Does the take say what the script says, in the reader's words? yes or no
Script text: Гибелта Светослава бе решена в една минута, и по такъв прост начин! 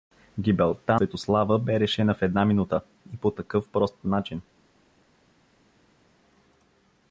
yes